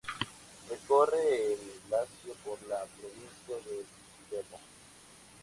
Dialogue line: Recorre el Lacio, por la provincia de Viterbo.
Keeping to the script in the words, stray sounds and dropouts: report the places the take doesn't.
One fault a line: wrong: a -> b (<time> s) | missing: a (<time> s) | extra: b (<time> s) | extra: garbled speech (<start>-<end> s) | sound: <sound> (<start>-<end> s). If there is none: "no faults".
no faults